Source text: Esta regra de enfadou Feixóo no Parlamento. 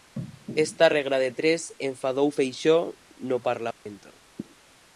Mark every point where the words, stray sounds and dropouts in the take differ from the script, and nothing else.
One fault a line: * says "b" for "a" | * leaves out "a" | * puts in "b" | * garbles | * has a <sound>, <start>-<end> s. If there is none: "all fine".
* puts in "tres"
* has a dropout, 3.7-3.9 s